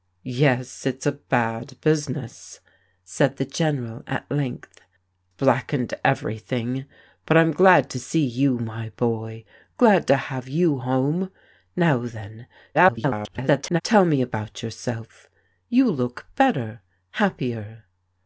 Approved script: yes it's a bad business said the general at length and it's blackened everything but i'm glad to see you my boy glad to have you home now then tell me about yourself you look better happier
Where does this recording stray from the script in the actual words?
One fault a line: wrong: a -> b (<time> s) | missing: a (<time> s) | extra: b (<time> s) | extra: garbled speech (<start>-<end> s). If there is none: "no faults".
missing: and it's (4.8 s)
extra: garbled speech (12.7-13.8 s)